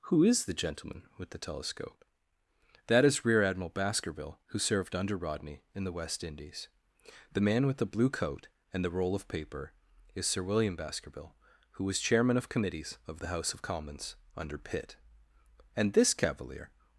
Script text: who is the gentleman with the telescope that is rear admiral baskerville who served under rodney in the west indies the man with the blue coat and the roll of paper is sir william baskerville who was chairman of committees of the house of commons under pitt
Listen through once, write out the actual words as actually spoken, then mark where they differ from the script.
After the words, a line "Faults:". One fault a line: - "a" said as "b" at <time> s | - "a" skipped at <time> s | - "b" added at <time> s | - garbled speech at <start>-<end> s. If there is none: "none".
who is the gentleman with the telescope that is rear admiral baskerville who served under rodney in the west indies the man with the blue coat and the roll of paper is sir william baskerville who was chairman of committees of the house of commons under pitt and this cavalier
Faults:
- "and this cavalier" added at 15.8 s